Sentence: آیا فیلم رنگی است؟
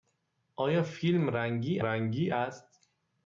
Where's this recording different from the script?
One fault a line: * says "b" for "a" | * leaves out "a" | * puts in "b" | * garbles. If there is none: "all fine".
* puts in "رنگی"